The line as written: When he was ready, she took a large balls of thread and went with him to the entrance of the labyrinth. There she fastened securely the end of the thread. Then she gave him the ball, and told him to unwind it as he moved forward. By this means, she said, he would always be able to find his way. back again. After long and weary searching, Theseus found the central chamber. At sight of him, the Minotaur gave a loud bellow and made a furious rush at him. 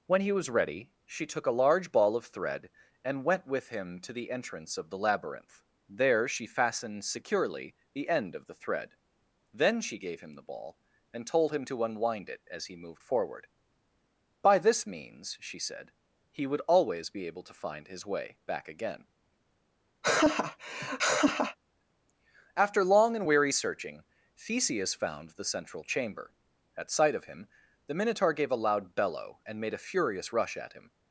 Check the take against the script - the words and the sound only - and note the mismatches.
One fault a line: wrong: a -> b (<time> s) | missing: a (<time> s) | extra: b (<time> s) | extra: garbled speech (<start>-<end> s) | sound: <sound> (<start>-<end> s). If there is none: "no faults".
wrong: balls -> ball (1.9 s)
sound: laugh (20.0-21.6 s)